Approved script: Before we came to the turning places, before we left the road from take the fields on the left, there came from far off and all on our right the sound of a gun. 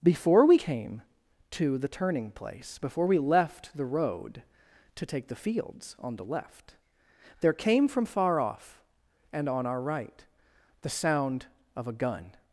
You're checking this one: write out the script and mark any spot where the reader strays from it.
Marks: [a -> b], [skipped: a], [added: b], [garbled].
Before we came to the turning [places, -> place] before we left the road [from -> to] take the fields on the left, there came from far off and [skipped: all] on our right the sound of a gun.